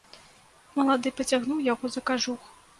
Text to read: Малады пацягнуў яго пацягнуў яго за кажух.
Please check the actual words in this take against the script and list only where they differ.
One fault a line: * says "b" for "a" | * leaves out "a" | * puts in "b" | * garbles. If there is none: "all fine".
* leaves out "пацягнуў яго"